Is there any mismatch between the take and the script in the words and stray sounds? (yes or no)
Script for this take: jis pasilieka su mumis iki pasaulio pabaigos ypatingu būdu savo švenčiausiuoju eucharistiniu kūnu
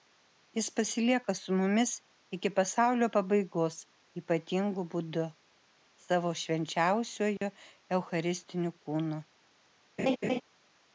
yes